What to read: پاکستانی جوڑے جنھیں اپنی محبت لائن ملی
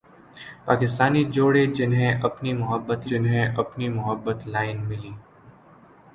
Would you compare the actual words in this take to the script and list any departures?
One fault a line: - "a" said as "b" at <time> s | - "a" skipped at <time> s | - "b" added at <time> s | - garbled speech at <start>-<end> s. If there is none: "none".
- "جنھیں اپنی محبت" added at 3.1 s